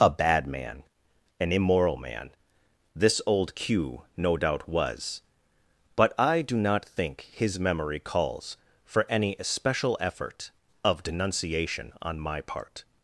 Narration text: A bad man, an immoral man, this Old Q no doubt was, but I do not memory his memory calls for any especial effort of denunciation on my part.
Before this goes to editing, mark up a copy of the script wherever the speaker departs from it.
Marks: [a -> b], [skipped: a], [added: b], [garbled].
A bad man, an immoral man, this Old Q no doubt was, but I do not [memory -> think] his memory calls for any especial effort of denunciation on my part.